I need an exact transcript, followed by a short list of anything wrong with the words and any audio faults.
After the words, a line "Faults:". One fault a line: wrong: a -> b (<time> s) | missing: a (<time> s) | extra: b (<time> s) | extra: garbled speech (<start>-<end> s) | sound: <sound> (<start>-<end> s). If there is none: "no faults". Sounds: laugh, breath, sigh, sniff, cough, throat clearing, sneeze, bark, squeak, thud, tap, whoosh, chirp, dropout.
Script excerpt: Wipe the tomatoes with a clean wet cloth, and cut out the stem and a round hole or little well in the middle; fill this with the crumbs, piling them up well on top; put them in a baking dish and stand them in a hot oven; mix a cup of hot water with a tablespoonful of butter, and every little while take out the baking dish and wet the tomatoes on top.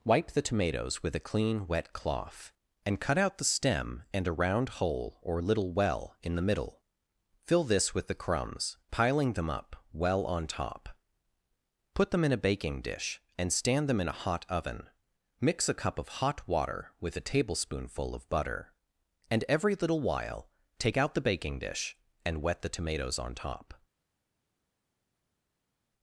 Wipe the tomatoes with a clean wet cloth, and cut out the stem and a round hole or little well in the middle; fill this with the crumbs, piling them up well on top; put them in a baking dish and stand them in a hot oven; mix a cup of hot water with a tablespoonful of butter, and every little while take out the baking dish and wet the tomatoes on top.
Faults:
no faults